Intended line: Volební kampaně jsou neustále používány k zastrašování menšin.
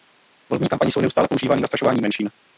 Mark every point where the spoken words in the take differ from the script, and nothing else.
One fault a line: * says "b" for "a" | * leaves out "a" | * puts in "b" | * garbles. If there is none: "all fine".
all fine